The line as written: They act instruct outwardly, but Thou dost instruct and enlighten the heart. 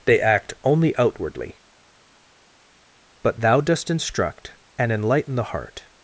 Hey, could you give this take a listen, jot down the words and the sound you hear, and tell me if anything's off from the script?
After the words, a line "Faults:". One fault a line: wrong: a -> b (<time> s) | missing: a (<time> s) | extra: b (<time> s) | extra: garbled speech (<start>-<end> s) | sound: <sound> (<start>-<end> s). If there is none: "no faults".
They act only outwardly, but Thou dost instruct and enlighten the heart.
Faults:
wrong: instruct -> only (0.6 s)